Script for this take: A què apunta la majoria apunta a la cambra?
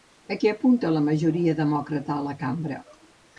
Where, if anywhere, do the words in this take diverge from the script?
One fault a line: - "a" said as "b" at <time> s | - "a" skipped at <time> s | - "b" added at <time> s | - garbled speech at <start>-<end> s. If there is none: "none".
- "apunta" said as "demòcrata" at 1.6 s